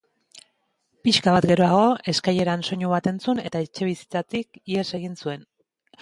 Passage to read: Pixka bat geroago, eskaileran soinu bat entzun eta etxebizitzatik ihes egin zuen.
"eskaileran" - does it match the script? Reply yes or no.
yes